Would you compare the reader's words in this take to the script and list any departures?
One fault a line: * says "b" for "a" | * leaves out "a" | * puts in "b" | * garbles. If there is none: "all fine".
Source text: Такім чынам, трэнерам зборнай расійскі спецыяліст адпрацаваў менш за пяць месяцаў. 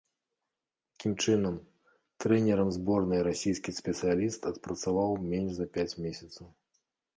all fine